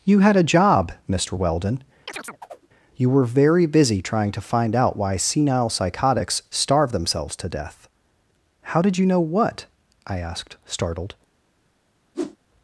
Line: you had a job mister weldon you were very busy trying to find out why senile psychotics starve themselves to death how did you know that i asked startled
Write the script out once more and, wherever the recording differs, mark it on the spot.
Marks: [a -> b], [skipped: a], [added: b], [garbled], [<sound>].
you had a job mister weldon [chirp] you were very busy trying to find out why senile psychotics starve themselves to death how did you know [that -> what] i asked startled [whoosh]